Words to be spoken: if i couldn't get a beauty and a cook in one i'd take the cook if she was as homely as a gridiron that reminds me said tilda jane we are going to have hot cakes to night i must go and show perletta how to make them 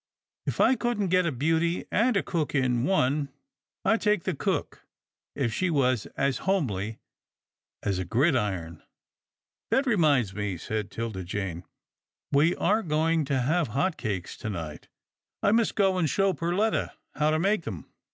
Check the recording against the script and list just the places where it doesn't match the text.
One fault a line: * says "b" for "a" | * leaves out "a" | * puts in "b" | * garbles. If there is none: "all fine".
all fine